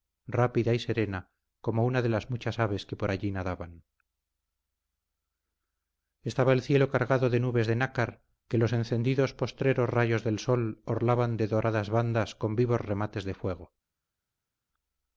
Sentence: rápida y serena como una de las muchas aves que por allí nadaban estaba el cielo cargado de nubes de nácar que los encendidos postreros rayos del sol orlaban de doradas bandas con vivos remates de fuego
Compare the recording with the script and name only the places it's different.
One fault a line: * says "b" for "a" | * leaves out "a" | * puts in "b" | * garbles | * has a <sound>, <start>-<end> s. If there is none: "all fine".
all fine